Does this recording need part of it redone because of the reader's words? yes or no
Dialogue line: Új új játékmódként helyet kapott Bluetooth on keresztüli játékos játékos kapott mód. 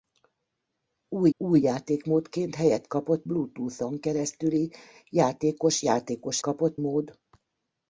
no